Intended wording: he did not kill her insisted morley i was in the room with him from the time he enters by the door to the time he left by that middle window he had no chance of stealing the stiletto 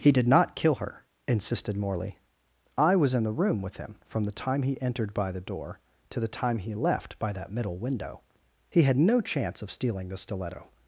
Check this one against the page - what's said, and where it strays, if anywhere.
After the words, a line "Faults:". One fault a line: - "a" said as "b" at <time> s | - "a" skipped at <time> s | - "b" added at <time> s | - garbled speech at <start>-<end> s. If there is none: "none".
he did not kill her insisted morley i was in the room with him from the time he entered by the door to the time he left by that middle window he had no chance of stealing the stiletto
Faults:
- "enters" said as "entered" at 4.8 s